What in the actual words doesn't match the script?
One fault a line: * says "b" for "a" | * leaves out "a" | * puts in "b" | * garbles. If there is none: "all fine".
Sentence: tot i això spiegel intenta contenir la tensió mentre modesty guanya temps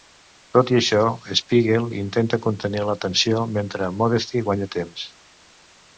all fine